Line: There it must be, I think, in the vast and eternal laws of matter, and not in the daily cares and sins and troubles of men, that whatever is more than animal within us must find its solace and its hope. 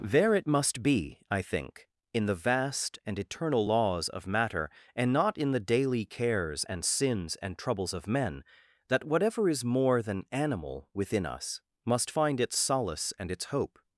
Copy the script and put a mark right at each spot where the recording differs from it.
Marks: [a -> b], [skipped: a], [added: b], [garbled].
There it must be, I think, in the vast and eternal laws of matter, and not in the daily cares and sins and troubles of men, that whatever is more than animal within us must find its solace and its hope.